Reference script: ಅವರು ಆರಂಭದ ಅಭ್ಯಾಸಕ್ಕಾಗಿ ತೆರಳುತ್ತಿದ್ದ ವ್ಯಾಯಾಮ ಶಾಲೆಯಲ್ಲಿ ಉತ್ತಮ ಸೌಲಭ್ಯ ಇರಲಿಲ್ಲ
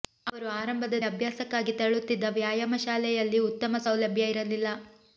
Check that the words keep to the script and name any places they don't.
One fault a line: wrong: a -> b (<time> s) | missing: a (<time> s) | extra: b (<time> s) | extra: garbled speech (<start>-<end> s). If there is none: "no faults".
no faults